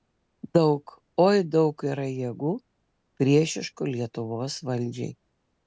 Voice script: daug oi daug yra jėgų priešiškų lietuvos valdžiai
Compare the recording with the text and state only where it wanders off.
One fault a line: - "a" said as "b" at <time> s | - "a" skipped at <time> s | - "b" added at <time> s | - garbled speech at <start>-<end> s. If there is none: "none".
none